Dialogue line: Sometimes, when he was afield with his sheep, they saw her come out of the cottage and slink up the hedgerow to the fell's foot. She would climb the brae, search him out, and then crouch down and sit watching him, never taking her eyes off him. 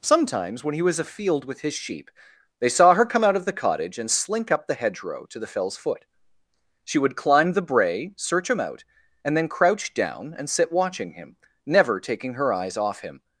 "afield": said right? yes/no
yes